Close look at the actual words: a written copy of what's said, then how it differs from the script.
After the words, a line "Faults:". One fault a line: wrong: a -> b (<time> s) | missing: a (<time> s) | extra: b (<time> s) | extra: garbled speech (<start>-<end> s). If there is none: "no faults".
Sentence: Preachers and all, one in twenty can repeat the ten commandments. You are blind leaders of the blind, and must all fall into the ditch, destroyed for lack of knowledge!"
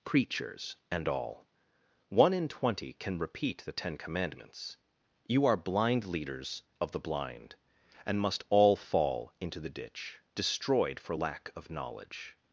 Preachers and all, one in twenty can repeat the ten commandments. You are blind leaders of the blind, and must all fall into the ditch, destroyed for lack of knowledge!"
Faults:
no faults